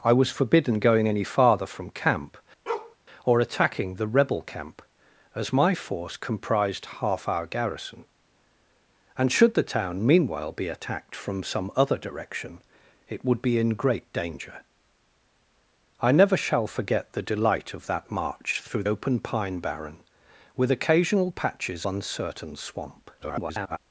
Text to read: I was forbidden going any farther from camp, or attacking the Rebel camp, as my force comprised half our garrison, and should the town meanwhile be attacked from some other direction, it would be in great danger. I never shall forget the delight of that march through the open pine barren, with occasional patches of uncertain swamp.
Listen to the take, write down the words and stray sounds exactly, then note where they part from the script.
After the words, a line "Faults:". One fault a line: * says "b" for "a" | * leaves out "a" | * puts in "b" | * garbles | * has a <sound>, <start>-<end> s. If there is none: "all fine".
I was forbidden going any farther from camp, or attacking the Rebel camp, as my force comprised half our garrison, and should the town meanwhile be attacked from some other direction, it would be in great danger. I never shall forget the delight of that march through open pine barren, with occasional patches uncertain swamp. [garbled]
Faults:
* has a bark, 2.7-3.0 s
* leaves out "the"
* leaves out "of"
* garbles